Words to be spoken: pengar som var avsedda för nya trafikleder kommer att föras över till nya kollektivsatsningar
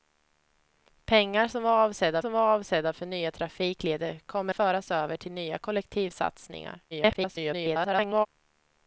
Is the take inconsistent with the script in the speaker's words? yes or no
yes